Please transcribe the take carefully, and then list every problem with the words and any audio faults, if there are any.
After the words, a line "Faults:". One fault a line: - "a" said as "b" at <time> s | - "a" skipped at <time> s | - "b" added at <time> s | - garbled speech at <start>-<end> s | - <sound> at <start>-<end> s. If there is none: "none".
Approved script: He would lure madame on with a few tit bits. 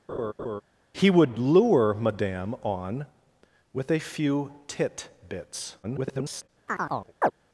He would lure madame on with a few tit bits. [garbled]
Faults:
- laugh at 0.1-0.6 s
- garbled speech at 5.8-6.5 s
- chirp at 6.7-7.3 s